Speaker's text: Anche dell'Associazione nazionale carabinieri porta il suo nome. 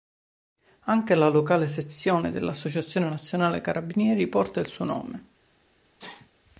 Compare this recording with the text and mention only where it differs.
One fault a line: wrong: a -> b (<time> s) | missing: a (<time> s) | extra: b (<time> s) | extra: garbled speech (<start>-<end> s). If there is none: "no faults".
extra: la locale sezione (1.1 s)